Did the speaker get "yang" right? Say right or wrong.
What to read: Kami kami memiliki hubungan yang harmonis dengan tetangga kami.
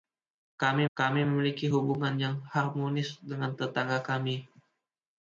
right